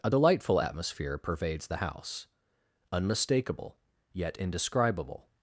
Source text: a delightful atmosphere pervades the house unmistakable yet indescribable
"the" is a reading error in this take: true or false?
false